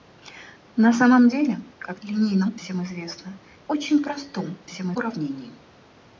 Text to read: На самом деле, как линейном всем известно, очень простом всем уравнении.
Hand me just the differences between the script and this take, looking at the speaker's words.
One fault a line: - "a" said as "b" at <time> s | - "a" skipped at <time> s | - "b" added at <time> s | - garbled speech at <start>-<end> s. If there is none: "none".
none